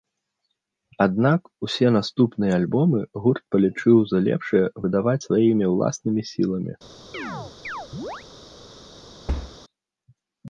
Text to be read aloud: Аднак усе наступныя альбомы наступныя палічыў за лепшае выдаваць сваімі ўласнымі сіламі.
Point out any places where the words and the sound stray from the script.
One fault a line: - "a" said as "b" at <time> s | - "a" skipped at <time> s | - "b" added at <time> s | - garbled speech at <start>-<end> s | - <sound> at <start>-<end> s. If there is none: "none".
- "наступныя" said as "гурт" at 3.2 s
- chirp at 7.1-8.2 s
- thud at 9.3-9.6 s